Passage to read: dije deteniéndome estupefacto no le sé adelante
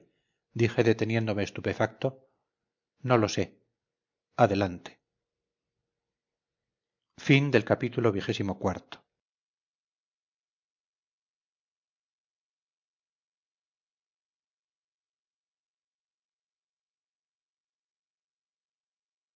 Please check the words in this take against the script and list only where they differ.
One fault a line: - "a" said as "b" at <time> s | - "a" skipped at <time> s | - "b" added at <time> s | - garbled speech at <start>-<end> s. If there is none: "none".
- "le" said as "lo" at 3.2 s